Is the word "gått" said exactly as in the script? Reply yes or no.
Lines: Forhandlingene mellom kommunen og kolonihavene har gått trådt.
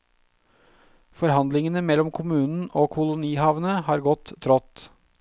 yes